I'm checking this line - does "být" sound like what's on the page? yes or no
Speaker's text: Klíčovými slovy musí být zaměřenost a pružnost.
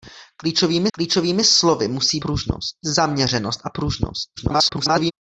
no